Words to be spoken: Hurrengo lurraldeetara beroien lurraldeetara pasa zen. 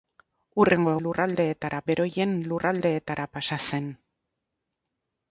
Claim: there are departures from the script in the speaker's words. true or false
false